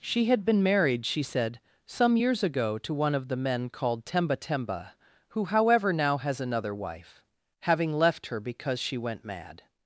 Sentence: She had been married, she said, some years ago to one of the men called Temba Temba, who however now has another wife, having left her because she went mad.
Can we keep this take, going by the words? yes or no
yes